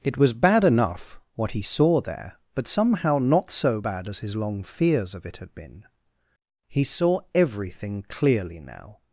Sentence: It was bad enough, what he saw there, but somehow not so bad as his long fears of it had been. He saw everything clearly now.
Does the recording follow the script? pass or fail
pass